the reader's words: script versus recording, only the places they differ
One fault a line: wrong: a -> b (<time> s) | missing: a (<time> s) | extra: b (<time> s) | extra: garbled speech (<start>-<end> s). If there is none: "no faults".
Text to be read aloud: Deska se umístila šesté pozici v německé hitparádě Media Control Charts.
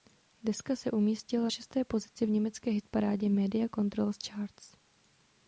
no faults